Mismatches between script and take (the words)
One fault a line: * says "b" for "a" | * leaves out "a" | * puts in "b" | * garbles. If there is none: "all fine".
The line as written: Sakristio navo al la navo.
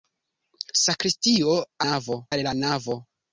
all fine